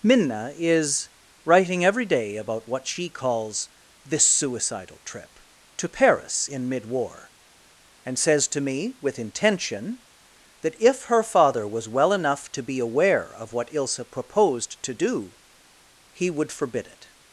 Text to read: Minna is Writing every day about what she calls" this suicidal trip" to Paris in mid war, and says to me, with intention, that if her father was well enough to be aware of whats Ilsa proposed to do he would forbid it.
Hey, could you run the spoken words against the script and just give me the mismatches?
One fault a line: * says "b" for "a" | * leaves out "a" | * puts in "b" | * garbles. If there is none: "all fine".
* says "what" for "whats"